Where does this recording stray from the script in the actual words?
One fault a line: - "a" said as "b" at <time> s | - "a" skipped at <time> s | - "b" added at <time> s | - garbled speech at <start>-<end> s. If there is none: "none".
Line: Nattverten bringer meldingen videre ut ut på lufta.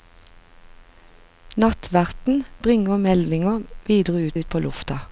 none